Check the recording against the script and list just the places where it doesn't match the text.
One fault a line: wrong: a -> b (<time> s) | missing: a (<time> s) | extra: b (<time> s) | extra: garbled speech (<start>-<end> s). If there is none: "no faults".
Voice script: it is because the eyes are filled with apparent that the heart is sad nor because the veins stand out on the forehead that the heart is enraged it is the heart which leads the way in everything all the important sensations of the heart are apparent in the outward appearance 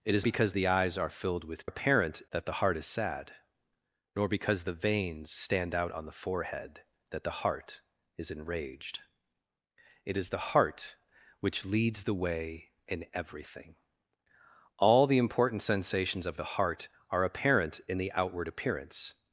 no faults